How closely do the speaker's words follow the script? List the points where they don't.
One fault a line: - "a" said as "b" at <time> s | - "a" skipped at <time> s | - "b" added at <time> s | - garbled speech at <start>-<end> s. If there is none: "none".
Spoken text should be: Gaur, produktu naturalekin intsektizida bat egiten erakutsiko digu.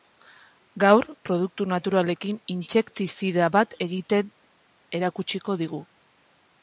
none